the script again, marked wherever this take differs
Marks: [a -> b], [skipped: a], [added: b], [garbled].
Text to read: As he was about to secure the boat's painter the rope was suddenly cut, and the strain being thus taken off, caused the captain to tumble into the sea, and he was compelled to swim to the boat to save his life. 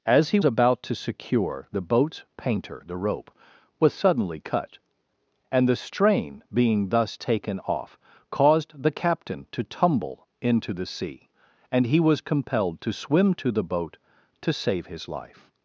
As he [skipped: was] about to secure the boat's painter the rope was suddenly cut, and the strain being thus taken off, caused the captain to tumble into the sea, and he was compelled to swim to the boat to save his life.